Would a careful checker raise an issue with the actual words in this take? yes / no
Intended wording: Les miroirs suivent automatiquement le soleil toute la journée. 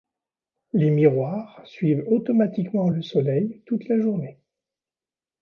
no